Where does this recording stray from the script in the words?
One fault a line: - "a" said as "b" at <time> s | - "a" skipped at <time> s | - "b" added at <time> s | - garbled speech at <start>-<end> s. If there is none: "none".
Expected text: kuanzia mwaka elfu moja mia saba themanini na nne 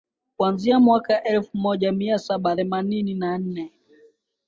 none